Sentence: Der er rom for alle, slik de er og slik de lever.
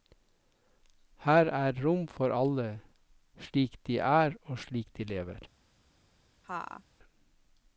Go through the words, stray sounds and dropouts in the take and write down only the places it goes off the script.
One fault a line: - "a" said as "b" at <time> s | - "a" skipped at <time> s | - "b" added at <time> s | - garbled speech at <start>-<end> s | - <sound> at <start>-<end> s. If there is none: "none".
- "Der" said as "Her" at 1.2 s
- laugh at 6.4-6.8 s